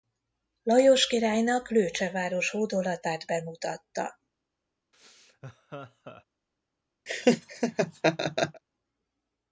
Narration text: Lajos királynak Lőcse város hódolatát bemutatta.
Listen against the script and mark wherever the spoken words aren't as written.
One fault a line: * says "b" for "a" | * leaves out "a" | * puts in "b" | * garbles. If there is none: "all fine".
all fine